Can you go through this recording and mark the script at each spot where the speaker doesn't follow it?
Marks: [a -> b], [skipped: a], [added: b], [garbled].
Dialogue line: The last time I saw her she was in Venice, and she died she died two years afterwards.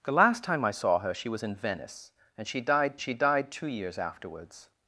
The last time I saw her she was in Venice, and she died she died two years afterwards.